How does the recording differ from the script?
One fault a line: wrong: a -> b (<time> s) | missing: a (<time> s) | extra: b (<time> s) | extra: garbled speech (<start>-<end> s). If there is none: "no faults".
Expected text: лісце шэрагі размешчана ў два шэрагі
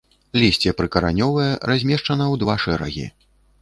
wrong: шэрагі -> прыкаранёвае (0.8 s)